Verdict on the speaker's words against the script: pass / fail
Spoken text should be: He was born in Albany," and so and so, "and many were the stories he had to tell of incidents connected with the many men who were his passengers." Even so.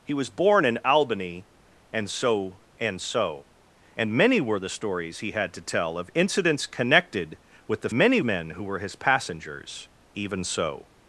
pass